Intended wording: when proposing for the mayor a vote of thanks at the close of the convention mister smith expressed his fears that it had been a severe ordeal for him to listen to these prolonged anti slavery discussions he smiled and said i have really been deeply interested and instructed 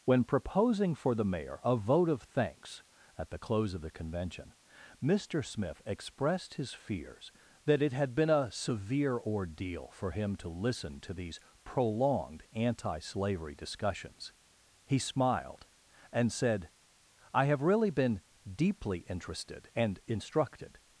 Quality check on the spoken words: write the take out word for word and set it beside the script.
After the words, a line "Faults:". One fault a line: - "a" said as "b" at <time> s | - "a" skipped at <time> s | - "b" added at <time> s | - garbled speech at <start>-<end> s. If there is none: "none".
when proposing for the mayor a vote of thanks at the close of the convention mister smith expressed his fears that it had been a severe ordeal for him to listen to these prolonged anti slavery discussions he smiled and said i have really been deeply interested and instructed
Faults:
none